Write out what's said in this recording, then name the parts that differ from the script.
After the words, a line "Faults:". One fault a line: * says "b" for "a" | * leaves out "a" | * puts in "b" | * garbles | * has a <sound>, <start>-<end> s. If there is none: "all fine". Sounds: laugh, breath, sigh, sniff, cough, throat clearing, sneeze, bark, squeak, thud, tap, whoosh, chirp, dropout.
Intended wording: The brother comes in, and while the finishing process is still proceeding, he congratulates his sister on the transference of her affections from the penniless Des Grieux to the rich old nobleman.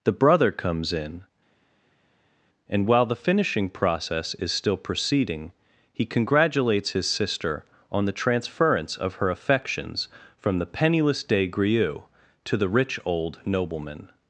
The brother comes in, and while the finishing process is still proceeding, he congratulates his sister on the transference of her affections from the penniless Des Grieux to the rich old nobleman.
Faults:
all fine